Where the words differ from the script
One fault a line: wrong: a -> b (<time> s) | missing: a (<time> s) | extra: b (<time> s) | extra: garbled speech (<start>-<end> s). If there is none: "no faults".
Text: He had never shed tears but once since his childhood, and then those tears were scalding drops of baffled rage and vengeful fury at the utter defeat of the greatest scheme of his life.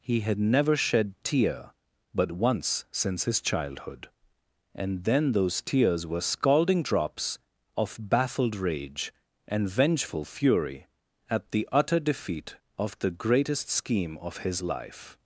wrong: tears -> tear (1.2 s)